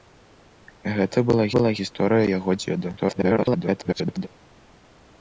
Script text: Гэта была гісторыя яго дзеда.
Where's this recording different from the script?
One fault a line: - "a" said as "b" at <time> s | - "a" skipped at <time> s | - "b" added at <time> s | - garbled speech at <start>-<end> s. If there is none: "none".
- "была" added at 1.6 s
- garbled speech at 3.0-4.3 s